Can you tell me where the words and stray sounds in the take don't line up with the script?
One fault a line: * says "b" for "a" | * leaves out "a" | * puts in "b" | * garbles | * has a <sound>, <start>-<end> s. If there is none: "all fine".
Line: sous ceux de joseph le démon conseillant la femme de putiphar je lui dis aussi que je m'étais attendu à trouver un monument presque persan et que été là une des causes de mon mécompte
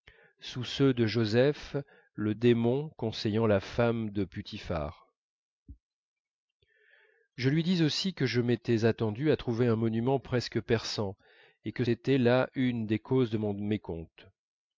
all fine